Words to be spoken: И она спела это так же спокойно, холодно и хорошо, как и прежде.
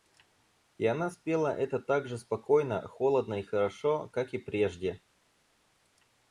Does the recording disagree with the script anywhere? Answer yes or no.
no